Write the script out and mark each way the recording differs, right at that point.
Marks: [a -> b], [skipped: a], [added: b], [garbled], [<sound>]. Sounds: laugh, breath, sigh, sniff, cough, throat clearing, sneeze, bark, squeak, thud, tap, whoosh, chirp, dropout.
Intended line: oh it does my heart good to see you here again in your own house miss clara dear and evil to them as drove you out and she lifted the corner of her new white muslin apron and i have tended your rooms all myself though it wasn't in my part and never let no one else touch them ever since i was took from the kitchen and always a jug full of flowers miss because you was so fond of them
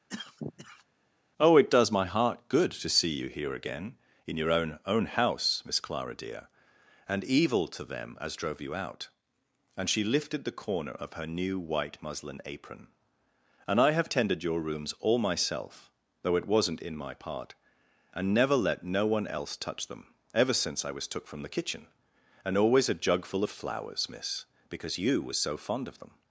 [cough] oh it does my heart good to see you here again in your own [added: own] house miss clara dear and evil to them as drove you out and she lifted the corner of her new white muslin apron and i have tended your rooms all myself though it wasn't in my part and never let no one else touch them ever since i was took from the kitchen and always a jug full of flowers miss because you was so fond of them